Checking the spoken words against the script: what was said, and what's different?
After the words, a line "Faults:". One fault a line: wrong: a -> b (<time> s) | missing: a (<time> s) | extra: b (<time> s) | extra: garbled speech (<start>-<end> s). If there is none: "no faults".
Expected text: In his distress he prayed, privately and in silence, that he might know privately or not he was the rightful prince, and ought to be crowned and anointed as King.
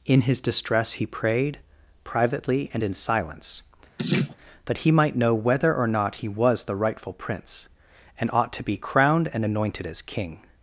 In his distress he prayed, privately and in silence, that he might know whether or not he was the rightful prince, and ought to be crowned and anointed as King.
Faults:
wrong: privately -> whether (5.3 s)